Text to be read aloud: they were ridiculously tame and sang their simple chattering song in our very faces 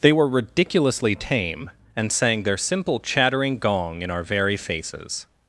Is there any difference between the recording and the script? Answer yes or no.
yes